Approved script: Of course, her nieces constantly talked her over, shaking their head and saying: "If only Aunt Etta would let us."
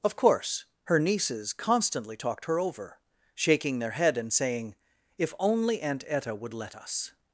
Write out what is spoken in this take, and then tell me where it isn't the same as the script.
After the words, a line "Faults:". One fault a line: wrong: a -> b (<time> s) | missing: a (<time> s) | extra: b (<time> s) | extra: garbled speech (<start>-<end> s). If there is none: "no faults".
Of course, her nieces constantly talked her over, shaking their head and saying: "If only Aunt Etta would let us."
Faults:
no faults